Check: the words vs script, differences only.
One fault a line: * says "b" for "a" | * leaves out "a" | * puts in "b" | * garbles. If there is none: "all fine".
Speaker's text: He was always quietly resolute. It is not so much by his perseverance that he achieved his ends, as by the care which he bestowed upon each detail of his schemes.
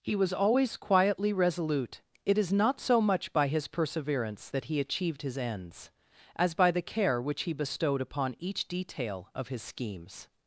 all fine